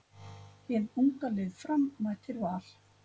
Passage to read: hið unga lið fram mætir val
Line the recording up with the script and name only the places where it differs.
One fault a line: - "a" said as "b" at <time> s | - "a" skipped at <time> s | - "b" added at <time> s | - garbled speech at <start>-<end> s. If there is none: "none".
none